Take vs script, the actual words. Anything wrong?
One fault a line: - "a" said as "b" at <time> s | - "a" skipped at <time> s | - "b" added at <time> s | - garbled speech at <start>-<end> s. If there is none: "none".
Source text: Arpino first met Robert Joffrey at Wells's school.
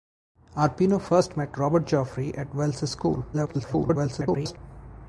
- garbled speech at 3.3-4.6 s